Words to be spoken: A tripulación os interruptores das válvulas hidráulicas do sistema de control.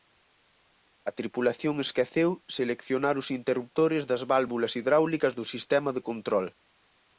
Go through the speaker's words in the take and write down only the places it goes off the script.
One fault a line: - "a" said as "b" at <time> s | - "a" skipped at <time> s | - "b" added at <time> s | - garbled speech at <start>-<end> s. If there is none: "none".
- "esqueceu seleccionar" added at 1.9 s